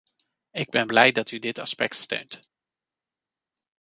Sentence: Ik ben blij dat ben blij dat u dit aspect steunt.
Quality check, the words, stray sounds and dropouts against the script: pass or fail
fail